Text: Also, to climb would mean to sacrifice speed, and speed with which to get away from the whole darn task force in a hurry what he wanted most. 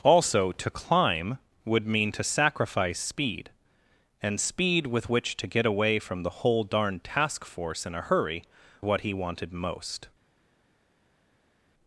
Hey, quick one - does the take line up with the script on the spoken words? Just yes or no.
yes